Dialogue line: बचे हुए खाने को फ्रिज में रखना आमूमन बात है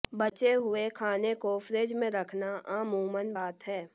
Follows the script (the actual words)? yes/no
yes